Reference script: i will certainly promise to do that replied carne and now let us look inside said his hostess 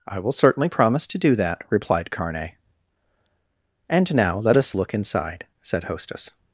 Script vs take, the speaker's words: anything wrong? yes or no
yes